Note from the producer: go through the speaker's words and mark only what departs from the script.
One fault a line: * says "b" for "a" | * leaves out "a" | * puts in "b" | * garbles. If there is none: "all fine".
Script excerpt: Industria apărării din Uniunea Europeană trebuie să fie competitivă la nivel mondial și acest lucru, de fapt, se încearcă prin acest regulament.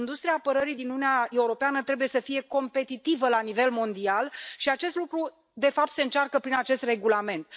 all fine